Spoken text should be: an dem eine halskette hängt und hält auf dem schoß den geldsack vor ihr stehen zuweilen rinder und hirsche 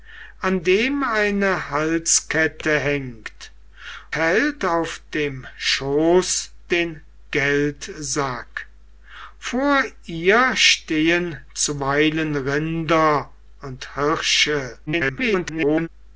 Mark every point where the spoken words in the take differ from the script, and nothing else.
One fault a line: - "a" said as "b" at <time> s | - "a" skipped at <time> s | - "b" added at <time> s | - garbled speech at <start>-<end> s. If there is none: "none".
- "und" skipped at 3.5 s
- garbled speech at 14.9-15.9 s